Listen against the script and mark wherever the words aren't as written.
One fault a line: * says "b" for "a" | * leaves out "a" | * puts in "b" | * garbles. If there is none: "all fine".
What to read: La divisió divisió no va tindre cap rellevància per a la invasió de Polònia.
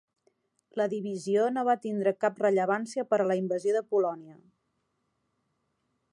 * leaves out "divisió"